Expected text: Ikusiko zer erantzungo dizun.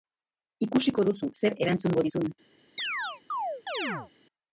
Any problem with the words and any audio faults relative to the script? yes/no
yes